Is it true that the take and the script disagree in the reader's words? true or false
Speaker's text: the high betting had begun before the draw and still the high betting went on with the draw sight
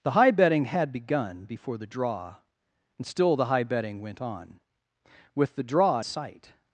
false